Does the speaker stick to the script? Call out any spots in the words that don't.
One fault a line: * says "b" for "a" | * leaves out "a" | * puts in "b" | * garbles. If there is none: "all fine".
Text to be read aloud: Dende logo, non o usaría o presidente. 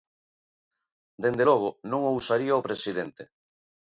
all fine